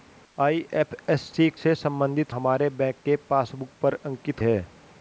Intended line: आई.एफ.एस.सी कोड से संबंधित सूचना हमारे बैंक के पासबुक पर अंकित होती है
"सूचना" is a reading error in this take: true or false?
true